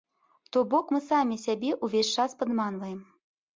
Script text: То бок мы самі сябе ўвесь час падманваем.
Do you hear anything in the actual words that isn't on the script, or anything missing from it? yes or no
no